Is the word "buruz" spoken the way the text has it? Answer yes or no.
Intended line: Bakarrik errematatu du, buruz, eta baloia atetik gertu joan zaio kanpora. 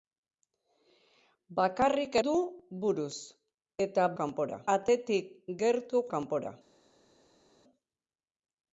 yes